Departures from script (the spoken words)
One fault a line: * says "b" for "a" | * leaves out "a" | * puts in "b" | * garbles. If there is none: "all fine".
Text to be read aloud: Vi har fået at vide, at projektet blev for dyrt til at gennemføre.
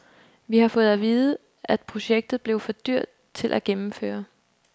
all fine